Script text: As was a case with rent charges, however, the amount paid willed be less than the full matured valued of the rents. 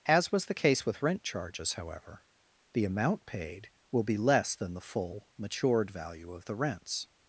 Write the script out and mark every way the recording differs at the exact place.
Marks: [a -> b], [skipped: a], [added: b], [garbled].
As was [a -> the] case with rent charges, however, the amount paid [willed -> will] be less than the full matured [valued -> value] of the rents.